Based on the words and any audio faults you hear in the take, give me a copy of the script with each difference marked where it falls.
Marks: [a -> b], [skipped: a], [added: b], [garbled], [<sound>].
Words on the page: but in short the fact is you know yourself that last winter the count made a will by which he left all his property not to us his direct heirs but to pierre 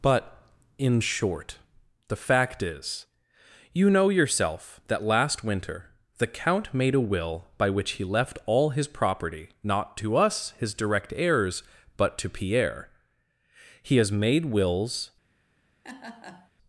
but in short the fact is you know yourself that last winter the count made a will by which he left all his property not to us his direct heirs but to pierre [added: he has made wills] [laugh]